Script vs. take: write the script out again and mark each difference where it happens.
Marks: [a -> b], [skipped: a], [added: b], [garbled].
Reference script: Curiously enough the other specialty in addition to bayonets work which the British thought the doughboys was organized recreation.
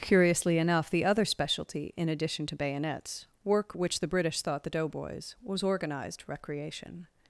Curiously enough the other specialty in addition to bayonets work which the British thought the doughboys was organized recreation.